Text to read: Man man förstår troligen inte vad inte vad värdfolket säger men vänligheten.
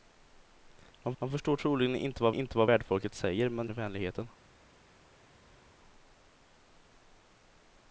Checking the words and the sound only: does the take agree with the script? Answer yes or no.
yes